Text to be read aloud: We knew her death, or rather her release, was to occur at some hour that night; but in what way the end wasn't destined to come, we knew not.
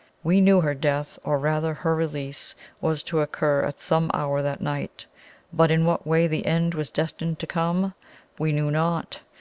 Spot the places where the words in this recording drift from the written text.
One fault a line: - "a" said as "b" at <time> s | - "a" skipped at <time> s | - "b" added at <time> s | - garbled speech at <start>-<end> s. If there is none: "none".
- "wasn't" said as "was" at 6.7 s